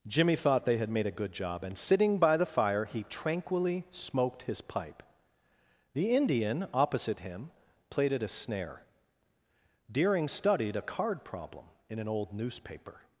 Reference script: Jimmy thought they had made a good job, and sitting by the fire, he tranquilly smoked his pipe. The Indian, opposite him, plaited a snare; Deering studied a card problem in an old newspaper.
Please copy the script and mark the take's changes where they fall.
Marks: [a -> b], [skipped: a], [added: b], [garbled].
Jimmy thought they had made a good job, and sitting by the fire, he tranquilly smoked his pipe. The Indian, opposite him, plaited a snare; Deering studied a card problem in an old newspaper.